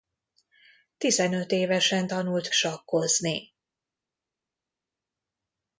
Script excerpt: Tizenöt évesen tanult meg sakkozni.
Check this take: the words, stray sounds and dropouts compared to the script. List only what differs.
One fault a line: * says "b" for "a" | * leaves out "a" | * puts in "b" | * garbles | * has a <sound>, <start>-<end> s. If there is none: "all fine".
* leaves out "meg"